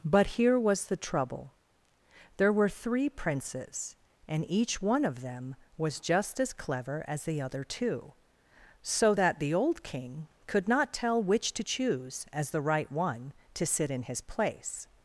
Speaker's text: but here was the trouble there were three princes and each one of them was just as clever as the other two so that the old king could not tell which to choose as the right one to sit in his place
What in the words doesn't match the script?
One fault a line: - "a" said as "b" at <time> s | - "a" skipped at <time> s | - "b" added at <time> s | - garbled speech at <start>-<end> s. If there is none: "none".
none